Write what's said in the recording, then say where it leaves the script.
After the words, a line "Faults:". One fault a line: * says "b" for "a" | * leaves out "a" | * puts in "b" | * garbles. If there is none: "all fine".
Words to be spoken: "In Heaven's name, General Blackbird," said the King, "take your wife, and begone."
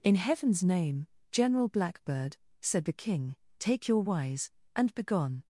"In Heaven's name, General Blackbird," said the King, "take your wise, and begone."
Faults:
* says "wise" for "wife"